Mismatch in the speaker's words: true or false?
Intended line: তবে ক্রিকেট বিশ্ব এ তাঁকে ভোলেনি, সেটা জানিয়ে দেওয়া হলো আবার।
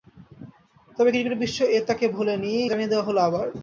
true